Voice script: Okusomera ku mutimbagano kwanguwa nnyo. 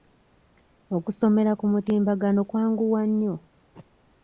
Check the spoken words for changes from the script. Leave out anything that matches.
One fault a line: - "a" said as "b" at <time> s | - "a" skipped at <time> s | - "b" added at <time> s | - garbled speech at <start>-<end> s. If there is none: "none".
none